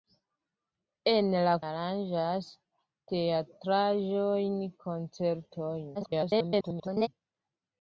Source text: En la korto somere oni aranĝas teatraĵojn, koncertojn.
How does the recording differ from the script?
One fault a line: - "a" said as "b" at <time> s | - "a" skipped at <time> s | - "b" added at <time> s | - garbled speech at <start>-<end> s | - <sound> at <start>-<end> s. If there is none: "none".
- "korto somere oni" skipped at 1.5 s
- garbled speech at 5.9-7.1 s